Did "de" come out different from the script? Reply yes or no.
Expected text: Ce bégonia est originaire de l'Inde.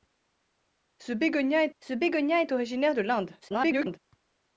no